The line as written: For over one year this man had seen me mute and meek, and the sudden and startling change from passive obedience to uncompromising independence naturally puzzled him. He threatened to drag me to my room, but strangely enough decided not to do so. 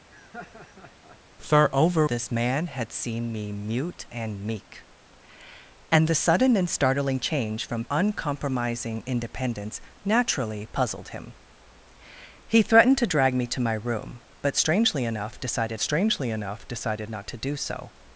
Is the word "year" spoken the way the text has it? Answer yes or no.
no